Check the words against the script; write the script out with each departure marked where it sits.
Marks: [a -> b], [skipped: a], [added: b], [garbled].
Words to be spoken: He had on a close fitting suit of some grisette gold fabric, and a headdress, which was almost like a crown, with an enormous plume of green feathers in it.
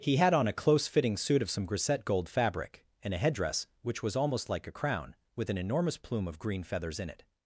He had on a close fitting suit of some grisette gold fabric, and a headdress, which was almost like a crown, with an enormous plume of green feathers in it.